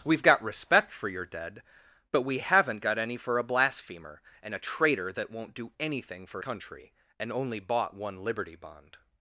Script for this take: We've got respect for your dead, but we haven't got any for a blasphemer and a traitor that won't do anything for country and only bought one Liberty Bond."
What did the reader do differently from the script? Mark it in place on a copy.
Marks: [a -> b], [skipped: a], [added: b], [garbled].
We've got respect for your dead, but we haven't got any for a blasphemer and a traitor that won't do anything for country and only bought one Liberty Bond."